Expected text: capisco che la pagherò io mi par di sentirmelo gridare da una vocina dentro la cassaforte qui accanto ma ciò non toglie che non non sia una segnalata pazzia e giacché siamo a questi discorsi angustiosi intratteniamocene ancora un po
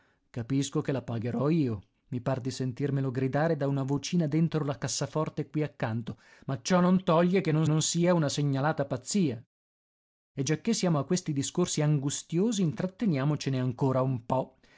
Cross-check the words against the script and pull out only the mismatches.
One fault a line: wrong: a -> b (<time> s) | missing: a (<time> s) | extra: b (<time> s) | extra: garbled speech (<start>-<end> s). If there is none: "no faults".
no faults